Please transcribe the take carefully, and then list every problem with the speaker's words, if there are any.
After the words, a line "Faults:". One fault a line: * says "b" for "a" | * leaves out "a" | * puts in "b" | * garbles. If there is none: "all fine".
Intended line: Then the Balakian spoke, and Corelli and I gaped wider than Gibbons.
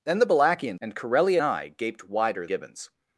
Then the Balakian and Corelli I gaped wider Gibbons.
Faults:
* leaves out "spoke"
* leaves out "and"
* leaves out "than"